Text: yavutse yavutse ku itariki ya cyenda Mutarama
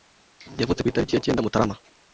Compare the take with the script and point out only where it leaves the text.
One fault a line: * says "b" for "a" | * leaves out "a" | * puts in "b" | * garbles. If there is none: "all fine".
* leaves out "yavutse"